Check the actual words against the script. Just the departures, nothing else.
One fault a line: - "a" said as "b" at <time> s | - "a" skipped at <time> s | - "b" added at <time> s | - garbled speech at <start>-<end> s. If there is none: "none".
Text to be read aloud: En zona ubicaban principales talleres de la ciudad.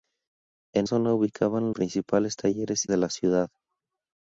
none